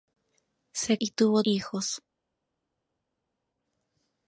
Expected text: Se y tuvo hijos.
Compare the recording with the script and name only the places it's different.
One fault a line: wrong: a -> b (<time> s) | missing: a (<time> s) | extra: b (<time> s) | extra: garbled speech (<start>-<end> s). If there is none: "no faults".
no faults